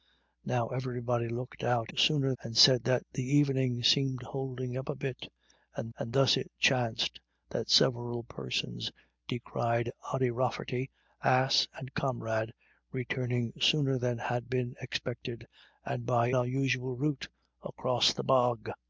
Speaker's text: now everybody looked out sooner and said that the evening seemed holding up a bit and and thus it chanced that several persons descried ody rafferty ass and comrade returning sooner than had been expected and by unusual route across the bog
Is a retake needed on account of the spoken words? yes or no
no